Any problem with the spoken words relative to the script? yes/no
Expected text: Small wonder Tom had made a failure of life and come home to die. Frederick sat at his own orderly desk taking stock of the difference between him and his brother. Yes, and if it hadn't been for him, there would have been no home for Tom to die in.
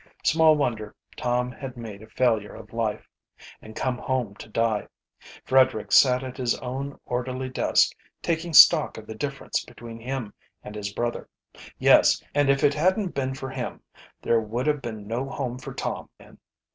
yes